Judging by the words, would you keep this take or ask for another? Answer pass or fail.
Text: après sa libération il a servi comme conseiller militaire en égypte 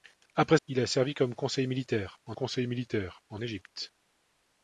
fail